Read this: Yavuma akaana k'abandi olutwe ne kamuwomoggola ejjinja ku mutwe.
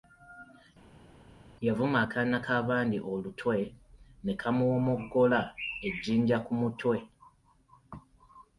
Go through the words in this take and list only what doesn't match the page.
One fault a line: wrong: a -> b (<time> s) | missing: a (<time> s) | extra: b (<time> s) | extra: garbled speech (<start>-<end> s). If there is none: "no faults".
no faults